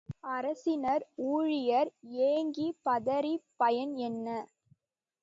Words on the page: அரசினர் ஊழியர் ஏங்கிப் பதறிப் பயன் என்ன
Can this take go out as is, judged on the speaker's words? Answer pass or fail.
pass